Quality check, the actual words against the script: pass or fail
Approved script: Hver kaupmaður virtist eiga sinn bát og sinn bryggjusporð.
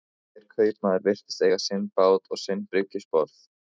pass